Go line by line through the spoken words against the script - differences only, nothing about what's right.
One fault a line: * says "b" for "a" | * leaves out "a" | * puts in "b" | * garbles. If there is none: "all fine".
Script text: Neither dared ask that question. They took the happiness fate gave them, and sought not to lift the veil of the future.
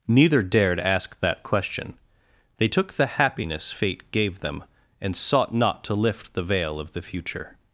all fine